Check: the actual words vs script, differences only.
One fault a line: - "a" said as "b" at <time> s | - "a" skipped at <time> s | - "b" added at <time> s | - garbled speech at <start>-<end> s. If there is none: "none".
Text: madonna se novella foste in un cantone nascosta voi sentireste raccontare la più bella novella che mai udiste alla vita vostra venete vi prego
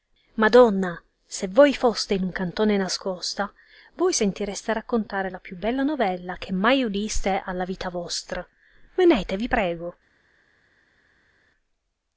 - "novella" said as "voi" at 1.5 s